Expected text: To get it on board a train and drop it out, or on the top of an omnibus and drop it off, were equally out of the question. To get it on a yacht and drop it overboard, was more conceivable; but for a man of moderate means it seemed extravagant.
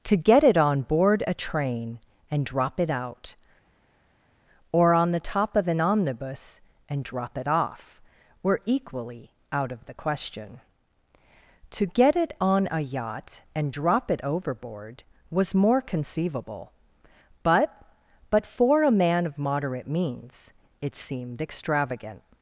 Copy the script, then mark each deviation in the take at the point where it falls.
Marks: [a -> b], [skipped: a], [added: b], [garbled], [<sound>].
To get it on board a train and drop it out, or on the top of an omnibus and drop it off, were equally out of the question. To get it on a yacht and drop it overboard, was more conceivable; but [added: but] for a man of moderate means it seemed extravagant.